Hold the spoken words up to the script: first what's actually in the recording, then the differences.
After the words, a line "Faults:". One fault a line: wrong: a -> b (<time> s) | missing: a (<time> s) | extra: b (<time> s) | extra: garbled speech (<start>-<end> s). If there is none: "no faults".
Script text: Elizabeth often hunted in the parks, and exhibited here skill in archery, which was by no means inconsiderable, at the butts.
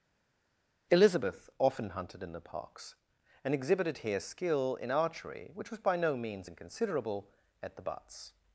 Elizabeth often hunted in the parks, and exhibited here skill in archery, which was by no means inconsiderable, at the butts.
Faults:
no faults